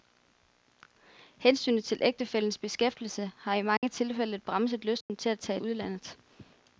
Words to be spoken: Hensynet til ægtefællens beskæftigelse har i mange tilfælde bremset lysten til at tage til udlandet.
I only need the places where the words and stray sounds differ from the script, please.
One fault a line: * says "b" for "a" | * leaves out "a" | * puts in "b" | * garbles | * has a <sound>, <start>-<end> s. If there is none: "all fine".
* has a dropout, 3.8-3.8 s
* has a dropout, 5.0-5.1 s
* leaves out "til"